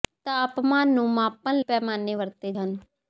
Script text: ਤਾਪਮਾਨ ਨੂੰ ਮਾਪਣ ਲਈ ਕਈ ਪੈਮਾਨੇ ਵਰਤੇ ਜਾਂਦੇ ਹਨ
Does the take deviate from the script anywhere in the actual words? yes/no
yes